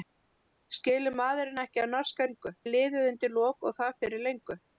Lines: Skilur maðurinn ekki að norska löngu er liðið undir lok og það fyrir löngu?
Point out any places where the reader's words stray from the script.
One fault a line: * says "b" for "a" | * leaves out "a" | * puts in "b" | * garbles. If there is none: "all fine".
all fine